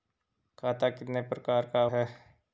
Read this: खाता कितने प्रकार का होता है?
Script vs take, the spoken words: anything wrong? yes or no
yes